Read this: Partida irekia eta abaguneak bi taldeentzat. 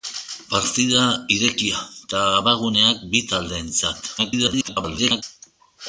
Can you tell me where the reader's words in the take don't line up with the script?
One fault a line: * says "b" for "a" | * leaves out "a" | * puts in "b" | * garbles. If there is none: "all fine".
* garbles